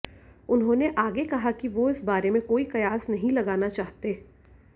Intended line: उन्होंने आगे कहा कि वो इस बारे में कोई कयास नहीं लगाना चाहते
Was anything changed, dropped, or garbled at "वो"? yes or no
no